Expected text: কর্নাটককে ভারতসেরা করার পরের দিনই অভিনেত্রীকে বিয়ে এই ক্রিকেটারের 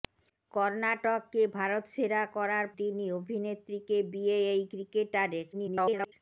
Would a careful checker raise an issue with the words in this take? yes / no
yes